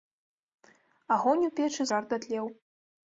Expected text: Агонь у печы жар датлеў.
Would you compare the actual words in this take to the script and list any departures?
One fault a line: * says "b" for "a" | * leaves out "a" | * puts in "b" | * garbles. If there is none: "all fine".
all fine